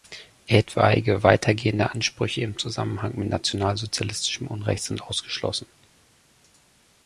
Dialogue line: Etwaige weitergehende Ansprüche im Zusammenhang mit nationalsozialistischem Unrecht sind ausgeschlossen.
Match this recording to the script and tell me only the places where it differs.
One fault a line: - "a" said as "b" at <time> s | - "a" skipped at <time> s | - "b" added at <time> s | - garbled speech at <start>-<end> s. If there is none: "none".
none